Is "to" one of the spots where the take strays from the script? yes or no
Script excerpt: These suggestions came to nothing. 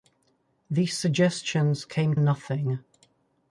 yes